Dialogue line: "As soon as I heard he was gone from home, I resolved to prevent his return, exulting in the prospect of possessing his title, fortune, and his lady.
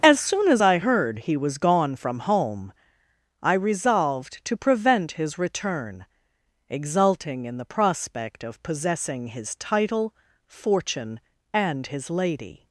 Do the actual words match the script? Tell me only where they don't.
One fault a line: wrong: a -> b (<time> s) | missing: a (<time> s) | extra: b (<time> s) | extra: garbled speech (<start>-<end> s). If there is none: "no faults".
no faults